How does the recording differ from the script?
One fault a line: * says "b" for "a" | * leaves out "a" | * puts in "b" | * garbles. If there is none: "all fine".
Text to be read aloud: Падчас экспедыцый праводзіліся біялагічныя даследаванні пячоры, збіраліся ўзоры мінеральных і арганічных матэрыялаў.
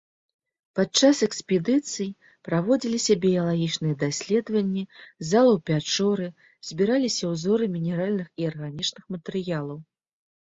* puts in "залаў"